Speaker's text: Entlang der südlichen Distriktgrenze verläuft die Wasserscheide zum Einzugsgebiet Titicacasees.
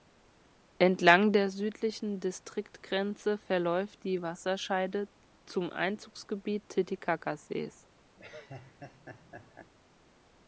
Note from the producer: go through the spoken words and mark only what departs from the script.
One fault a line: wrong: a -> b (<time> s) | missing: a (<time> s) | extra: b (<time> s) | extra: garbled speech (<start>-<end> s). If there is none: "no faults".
no faults